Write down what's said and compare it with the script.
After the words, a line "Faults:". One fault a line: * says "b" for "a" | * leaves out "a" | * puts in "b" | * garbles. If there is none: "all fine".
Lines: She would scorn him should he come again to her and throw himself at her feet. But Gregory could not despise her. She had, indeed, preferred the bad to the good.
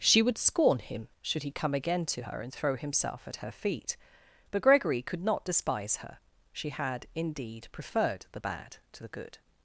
She would scorn him should he come again to her and throw himself at her feet. But Gregory could not despise her. She had, indeed, preferred the bad to the good.
Faults:
all fine